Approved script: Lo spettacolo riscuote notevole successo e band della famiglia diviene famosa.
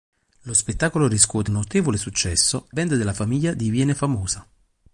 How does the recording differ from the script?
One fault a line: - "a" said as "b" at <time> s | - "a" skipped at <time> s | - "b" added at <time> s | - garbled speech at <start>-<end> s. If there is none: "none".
none